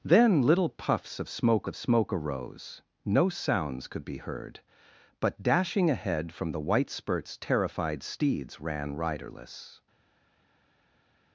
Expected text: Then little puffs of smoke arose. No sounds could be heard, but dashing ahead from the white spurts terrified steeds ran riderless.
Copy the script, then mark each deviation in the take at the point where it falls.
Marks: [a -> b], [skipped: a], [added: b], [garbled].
Then little puffs of smoke [added: of smoke] arose. No sounds could be heard, but dashing ahead from the white spurts terrified steeds ran riderless.